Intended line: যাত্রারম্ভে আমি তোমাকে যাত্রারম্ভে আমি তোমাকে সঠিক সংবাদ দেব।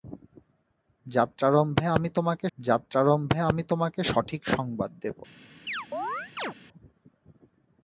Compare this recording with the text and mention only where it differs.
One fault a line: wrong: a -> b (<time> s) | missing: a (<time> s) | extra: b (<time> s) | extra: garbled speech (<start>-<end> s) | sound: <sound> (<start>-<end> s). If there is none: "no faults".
sound: chirp (5.7-6.5 s)